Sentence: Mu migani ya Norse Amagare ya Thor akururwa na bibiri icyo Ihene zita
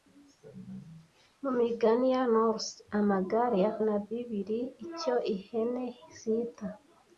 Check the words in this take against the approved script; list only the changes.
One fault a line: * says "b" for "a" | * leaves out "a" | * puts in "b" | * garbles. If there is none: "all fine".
* leaves out "Thor akururwa"